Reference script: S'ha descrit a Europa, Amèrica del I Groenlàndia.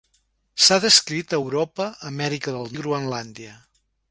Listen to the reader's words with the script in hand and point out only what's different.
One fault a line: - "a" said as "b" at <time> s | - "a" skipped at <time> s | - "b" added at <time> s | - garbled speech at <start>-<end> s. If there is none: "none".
none